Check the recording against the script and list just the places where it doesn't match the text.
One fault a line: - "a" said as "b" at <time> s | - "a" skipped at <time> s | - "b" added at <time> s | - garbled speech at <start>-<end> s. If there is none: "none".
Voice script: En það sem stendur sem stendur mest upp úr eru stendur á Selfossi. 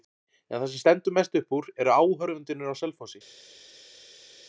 - "sem stendur" skipped at 1.2 s
- "stendur" said as "áhorfendurnir" at 2.0 s